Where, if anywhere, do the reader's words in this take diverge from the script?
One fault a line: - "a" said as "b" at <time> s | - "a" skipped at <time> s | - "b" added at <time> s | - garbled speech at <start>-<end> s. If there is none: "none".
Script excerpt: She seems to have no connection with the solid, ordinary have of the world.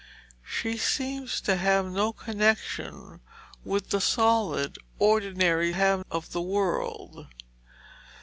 none